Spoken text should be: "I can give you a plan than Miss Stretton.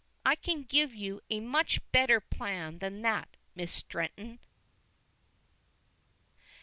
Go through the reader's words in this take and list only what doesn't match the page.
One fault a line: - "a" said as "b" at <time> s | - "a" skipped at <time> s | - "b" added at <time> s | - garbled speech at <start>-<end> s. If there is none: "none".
- "much better" added at 1.4 s
- "that" added at 3.0 s